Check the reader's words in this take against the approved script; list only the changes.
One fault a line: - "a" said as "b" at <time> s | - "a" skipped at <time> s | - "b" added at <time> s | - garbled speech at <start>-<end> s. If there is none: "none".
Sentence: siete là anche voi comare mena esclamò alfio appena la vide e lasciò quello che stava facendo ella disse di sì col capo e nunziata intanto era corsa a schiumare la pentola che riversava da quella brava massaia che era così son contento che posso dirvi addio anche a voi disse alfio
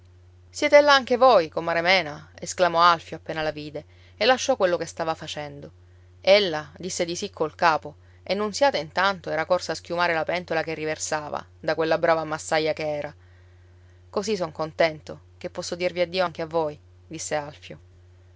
none